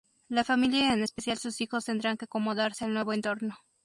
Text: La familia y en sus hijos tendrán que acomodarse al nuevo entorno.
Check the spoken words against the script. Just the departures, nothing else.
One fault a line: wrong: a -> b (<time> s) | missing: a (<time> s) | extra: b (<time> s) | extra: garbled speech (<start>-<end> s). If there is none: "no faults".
extra: especial (1.0 s)